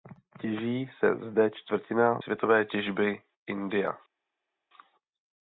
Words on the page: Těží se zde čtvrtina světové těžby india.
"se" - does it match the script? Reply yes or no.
yes